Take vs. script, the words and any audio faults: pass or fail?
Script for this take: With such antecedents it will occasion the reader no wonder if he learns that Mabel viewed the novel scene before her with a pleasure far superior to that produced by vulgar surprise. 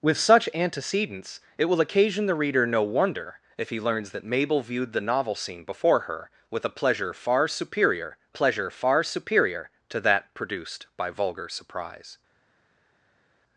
fail